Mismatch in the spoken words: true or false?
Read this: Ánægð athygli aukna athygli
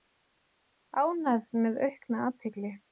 true